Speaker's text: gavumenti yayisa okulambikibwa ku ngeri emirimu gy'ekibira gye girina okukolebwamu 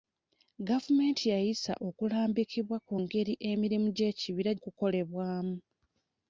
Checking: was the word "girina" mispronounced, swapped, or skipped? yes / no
yes